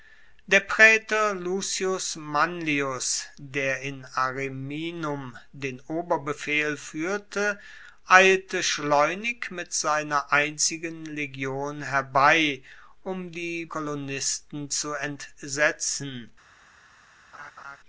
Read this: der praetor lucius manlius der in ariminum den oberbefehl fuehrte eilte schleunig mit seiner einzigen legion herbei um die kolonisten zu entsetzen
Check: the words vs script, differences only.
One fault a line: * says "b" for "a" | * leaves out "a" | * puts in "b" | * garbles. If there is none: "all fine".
all fine